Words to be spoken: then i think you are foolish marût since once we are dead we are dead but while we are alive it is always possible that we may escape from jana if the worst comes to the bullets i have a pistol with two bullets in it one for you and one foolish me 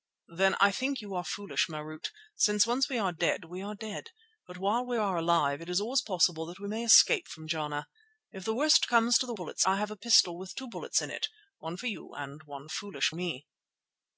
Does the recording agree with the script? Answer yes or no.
yes